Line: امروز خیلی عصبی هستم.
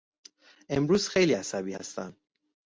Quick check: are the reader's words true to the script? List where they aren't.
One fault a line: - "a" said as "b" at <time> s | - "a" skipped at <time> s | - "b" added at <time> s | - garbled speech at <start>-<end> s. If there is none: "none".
none